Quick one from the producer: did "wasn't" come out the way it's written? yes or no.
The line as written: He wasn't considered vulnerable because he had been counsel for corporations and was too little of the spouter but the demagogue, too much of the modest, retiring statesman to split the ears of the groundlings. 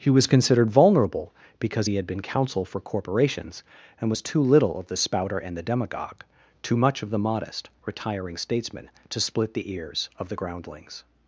no